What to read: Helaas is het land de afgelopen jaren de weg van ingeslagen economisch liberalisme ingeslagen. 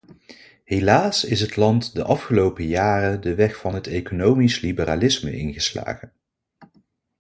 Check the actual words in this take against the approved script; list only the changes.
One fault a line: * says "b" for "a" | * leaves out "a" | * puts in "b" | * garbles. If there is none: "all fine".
* says "het" for "ingeslagen"